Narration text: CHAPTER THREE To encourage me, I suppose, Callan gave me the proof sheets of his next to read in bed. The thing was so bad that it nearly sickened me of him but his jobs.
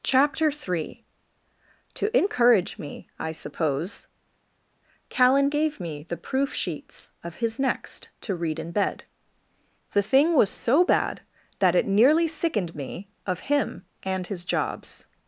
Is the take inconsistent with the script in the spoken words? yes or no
yes